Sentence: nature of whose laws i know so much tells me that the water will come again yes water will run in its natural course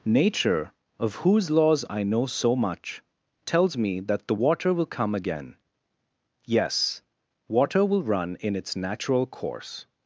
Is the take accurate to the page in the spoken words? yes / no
yes